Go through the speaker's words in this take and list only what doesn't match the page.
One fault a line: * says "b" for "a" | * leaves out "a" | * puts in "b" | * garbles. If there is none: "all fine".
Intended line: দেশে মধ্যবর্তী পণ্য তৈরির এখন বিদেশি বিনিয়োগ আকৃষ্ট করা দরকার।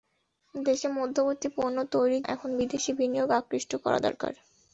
all fine